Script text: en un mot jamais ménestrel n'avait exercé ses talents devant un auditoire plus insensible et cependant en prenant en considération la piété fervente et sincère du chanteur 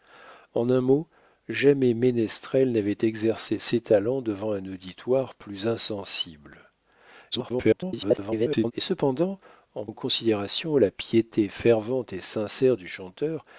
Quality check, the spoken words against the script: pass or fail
fail